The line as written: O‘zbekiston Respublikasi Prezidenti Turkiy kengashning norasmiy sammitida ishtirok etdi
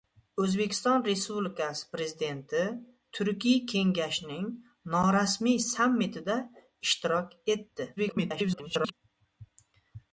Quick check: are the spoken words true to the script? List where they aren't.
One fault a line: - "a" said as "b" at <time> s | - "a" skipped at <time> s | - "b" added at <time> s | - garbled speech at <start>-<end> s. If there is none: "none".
- garbled speech at 8.0-8.9 s